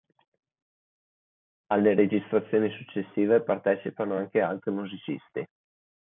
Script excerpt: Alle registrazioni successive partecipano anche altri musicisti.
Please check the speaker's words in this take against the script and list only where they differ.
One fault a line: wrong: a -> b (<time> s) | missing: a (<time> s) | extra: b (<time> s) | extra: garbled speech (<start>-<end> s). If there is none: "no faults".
no faults